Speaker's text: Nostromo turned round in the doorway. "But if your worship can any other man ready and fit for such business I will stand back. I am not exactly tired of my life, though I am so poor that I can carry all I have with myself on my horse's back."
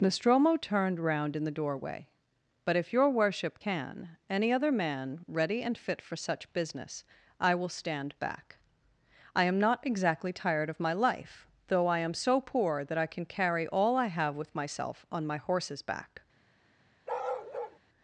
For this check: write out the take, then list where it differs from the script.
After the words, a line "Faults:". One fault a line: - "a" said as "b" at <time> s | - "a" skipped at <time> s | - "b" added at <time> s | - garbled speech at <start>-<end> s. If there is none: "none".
Nostromo turned round in the doorway. "But if your worship can any other man ready and fit for such business I will stand back. I am not exactly tired of my life, though I am so poor that I can carry all I have with myself on my horse's back."
Faults:
none